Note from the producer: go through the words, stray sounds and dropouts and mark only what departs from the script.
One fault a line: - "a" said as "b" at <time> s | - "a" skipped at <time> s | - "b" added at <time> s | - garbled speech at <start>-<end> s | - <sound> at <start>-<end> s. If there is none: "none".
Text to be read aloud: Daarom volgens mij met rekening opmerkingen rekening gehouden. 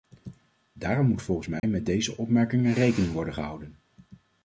- "moet" added at 1.1 s
- dropout at 1.6-1.6 s
- "rekening" said as "deze" at 1.9 s
- "worden" added at 3.1 s